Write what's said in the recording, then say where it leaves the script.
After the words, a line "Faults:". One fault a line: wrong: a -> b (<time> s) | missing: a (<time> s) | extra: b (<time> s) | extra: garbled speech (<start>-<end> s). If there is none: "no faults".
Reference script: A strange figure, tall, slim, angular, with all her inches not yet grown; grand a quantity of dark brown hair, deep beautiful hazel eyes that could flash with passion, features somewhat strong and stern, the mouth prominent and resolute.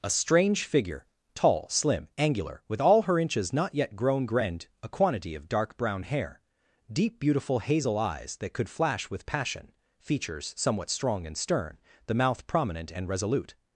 A strange figure, tall, slim, angular, with all her inches not yet grown; grand a quantity of dark brown hair, deep beautiful hazel eyes that could flash with passion, features somewhat strong and stern, the mouth prominent and resolute.
Faults:
no faults